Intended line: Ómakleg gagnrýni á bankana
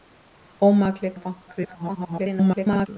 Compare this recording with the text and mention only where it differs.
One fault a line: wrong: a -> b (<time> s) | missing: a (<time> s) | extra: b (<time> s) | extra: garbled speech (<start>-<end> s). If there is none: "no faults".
missing: gagnrýni (1.1 s)
extra: garbled speech (1.5-2.9 s)